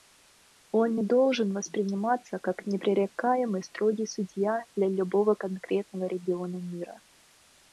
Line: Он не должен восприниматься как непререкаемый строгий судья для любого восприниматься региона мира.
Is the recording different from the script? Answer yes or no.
yes